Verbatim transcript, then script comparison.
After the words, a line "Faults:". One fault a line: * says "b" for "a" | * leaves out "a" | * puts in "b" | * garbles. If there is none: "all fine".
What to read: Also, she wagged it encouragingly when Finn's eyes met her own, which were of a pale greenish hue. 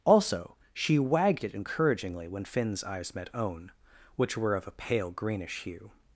Also, she wagged it encouragingly when Finn's eyes met own, which were of a pale greenish hue.
Faults:
* leaves out "her"